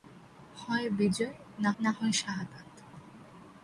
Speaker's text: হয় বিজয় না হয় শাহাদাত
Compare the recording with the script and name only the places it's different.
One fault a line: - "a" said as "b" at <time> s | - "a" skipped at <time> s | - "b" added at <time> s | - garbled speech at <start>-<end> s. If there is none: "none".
- "না" added at 1.8 s